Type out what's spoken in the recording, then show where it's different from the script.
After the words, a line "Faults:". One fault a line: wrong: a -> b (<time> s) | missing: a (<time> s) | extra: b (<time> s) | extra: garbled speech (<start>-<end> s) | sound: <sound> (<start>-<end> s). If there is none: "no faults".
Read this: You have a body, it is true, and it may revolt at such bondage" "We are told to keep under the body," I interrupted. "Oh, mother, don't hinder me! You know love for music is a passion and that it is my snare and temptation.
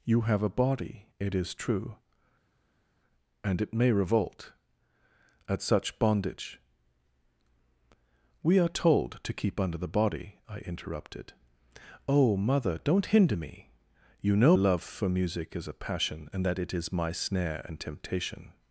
You have a body, it is true, and it may revolt at such bondage" "We are told to keep under the body," I interrupted. "Oh, mother, don't hinder me! You know love for music is a passion and that it is my snare and temptation.
Faults:
no faults